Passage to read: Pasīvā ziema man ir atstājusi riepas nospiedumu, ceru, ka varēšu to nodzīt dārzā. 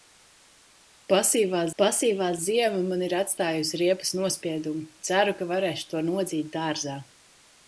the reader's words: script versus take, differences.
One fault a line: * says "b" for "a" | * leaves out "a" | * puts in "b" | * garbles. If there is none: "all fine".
* puts in "pasīvā"